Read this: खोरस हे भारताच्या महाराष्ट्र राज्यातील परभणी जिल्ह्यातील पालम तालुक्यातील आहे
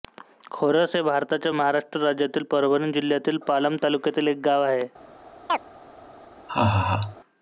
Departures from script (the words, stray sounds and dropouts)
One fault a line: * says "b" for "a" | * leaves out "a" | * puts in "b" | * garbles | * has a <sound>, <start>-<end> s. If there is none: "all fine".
* puts in "एक गाव"
* has a chirp, 5.5-5.6 s
* has a laugh, 6.5-7.2 s